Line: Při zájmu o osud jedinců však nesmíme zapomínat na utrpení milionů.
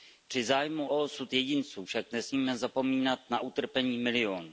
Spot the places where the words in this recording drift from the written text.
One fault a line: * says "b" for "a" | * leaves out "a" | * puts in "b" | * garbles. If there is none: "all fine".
all fine